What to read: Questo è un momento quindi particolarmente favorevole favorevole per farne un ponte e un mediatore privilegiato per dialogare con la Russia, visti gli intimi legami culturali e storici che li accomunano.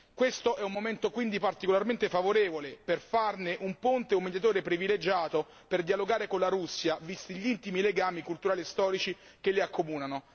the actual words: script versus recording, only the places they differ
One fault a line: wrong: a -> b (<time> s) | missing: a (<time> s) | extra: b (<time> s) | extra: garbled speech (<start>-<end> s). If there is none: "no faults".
missing: favorevole (2.8 s)